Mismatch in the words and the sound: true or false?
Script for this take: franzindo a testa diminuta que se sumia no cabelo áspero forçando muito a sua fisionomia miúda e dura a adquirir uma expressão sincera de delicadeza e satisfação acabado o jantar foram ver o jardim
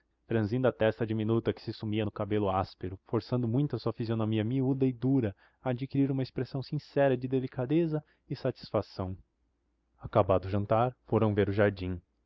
false